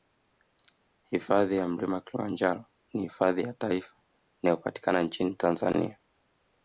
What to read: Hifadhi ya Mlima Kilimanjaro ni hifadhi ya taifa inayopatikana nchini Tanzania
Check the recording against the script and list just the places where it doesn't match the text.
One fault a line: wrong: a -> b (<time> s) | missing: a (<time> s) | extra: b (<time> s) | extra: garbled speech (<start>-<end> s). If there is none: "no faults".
no faults